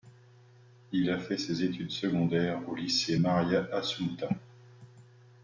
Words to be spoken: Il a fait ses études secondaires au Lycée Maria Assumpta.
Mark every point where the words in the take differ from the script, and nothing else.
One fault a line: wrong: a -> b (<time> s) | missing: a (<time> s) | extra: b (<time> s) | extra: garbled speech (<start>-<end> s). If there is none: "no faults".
no faults